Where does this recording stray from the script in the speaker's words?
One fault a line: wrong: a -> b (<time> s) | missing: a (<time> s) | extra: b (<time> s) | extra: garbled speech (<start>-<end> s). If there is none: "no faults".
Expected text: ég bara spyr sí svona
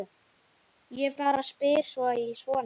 no faults